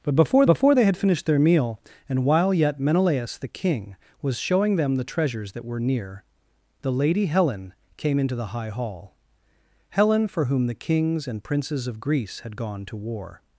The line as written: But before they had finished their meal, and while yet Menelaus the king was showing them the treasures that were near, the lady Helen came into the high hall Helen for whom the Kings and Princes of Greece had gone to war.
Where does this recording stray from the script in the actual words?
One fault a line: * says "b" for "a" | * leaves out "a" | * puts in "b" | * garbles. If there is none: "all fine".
* puts in "before"